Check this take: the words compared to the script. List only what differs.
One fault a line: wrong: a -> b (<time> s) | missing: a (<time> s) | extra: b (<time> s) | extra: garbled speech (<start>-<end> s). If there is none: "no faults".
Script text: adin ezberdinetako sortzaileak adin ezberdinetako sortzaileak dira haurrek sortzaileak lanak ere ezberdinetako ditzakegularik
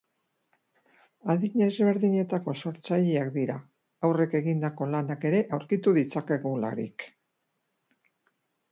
missing: adin ezberdinetako sortzaileak (3.3 s)
wrong: sortzaileak -> egindako (4.4 s)
wrong: ezberdinetako -> aurkitu (5.6 s)